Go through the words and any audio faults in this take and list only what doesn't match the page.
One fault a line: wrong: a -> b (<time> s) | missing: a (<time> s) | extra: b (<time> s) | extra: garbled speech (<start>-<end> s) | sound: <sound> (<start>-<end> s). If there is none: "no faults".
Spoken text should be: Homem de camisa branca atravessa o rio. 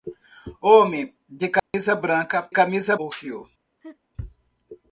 sound: dropout (1.6-1.7 s)
wrong: atravessa -> camisa (2.5 s)
sound: laugh (3.8-4.0 s)